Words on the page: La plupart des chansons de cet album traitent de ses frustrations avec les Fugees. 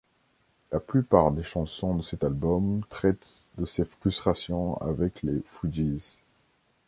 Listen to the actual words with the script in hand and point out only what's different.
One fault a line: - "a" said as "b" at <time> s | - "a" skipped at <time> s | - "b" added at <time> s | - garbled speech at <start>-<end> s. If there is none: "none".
none